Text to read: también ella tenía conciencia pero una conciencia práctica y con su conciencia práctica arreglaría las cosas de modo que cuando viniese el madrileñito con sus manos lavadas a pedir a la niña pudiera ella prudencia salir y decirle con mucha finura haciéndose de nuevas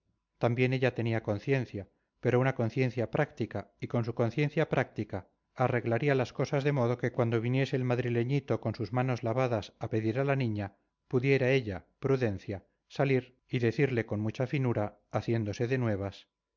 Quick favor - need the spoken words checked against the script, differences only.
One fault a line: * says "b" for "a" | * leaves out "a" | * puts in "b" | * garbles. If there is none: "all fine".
all fine